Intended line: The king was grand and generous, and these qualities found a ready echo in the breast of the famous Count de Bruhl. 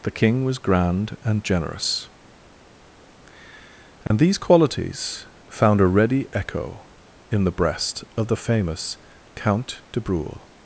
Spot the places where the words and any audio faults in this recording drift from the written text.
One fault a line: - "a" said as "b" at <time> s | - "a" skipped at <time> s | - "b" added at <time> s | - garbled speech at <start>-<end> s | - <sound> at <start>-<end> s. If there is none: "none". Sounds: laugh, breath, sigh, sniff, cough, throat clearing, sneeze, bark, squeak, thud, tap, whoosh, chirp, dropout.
- dropout at 4.1-4.1 s